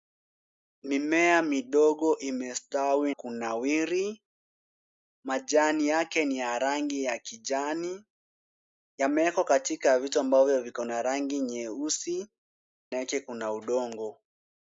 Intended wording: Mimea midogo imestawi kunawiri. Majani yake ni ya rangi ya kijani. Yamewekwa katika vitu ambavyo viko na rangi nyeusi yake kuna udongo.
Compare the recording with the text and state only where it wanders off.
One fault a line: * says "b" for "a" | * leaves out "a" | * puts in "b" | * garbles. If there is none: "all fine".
all fine